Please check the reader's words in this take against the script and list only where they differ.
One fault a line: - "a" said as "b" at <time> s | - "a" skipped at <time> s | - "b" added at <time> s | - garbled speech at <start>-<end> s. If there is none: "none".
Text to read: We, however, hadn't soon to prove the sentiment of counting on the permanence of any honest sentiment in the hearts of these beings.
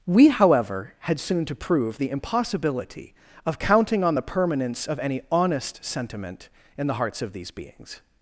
- "hadn't" said as "had" at 1.0 s
- "sentiment" said as "impossibility" at 2.1 s